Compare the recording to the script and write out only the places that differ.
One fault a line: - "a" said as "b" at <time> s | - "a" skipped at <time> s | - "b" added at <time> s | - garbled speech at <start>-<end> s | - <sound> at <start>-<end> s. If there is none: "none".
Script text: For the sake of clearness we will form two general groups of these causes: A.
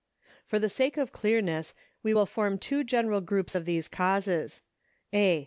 none